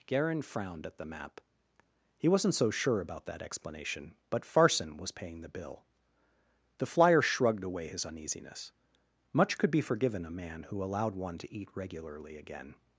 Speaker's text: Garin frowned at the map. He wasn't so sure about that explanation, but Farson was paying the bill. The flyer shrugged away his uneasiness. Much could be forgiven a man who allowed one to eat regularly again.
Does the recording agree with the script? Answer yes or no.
yes